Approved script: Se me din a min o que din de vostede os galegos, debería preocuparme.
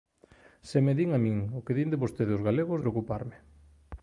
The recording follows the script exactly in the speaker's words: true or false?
false